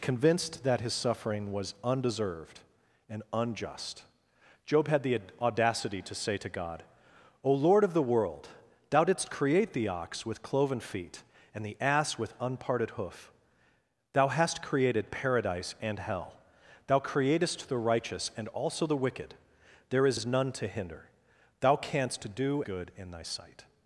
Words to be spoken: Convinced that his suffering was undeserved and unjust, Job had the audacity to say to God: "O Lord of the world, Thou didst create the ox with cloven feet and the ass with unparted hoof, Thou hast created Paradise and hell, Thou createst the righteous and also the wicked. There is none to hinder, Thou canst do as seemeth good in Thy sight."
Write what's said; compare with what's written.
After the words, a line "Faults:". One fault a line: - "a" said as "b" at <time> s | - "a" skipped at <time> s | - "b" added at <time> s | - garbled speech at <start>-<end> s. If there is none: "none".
Convinced that his suffering was undeserved and unjust, Job had the audacity to say to God: "O Lord of the world, Thou didst create the ox with cloven feet and the ass with unparted hoof, Thou hast created Paradise and hell, Thou createst the righteous and also the wicked. There is is none to hinder, Thou canst do good in Thy sight."
Faults:
- "is" added at 20.1 s
- "as seemeth" skipped at 22.6 s